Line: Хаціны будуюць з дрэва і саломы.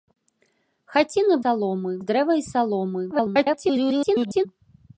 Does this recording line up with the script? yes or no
no